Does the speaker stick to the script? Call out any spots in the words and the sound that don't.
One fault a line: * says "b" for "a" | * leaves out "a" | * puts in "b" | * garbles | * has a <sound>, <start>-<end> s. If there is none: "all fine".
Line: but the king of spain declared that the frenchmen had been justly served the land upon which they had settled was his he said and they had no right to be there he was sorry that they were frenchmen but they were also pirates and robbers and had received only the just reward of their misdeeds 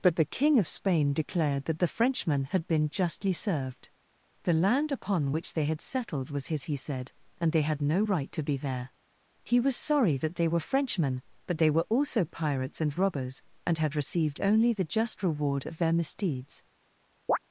* has a chirp, 17.3-17.4 s